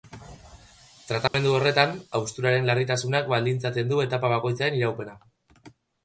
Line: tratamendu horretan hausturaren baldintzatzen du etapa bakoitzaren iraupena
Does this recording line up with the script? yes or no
no